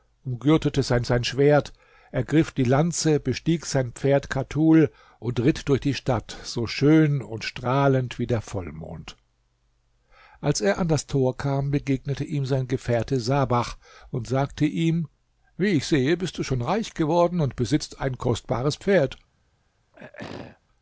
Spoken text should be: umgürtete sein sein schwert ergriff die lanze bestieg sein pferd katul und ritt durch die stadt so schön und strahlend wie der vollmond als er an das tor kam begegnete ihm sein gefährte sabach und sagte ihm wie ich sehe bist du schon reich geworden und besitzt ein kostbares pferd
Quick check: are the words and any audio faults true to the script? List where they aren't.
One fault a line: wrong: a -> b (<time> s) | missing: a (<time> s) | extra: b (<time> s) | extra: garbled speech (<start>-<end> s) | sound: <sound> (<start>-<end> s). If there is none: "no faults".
sound: throat clearing (19.9-20.6 s)